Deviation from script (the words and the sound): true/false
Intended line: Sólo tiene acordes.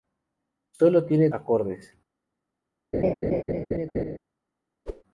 true